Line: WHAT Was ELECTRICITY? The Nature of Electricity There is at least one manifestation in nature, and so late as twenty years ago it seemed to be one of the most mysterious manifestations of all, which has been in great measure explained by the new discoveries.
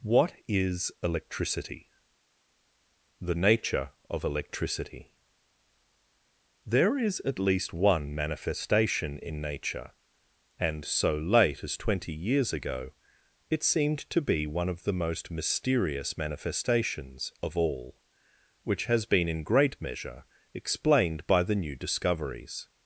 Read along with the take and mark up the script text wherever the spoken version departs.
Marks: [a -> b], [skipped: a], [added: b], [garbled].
WHAT [Was -> IS] ELECTRICITY? The Nature of Electricity There is at least one manifestation in nature, and so late as twenty years ago it seemed to be one of the most mysterious manifestations of all, which has been in great measure explained by the new discoveries.